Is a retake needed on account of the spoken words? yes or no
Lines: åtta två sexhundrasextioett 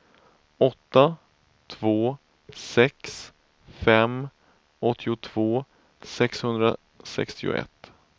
yes